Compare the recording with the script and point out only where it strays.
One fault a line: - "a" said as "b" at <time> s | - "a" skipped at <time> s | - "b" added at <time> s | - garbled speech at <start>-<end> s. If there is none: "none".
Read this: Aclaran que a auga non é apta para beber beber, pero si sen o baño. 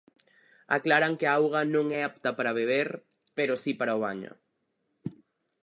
- "beber" skipped at 2.9 s
- "sen" said as "para" at 3.8 s